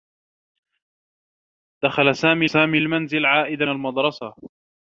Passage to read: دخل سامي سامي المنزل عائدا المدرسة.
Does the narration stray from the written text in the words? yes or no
no